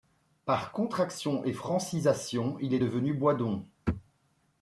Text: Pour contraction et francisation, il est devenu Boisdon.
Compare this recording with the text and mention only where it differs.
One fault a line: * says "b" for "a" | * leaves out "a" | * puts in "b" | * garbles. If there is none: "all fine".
* says "Par" for "Pour"